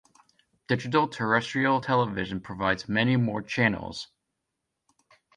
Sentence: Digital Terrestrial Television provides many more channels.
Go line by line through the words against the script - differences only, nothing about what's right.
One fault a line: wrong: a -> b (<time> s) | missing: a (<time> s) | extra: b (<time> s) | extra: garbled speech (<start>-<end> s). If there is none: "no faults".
no faults